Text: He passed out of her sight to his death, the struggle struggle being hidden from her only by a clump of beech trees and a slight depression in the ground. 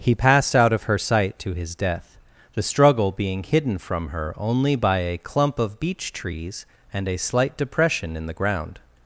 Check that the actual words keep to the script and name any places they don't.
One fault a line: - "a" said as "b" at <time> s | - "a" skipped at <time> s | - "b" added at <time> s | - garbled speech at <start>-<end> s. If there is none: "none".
- "struggle" skipped at 3.1 s